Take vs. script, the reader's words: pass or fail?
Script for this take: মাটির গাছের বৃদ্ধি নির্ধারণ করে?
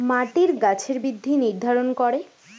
pass